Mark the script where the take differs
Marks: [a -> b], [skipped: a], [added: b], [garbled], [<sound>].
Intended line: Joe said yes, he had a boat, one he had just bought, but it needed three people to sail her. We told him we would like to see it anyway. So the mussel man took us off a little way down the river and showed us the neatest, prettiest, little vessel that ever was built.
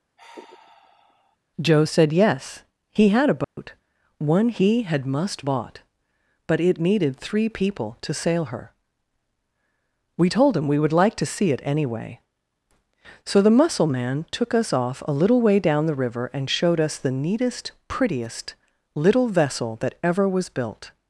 [sigh] Joe said yes, he had a boat, [dropout] one he had [just -> must] bought, but it needed three people to sail her. We told him we would like to see it anyway. So the mussel man took us off a little way down the river and showed us the neatest, prettiest, little vessel that ever was built.